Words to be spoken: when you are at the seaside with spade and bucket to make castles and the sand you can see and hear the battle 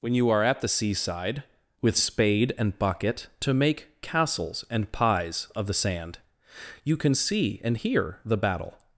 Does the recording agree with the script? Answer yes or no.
no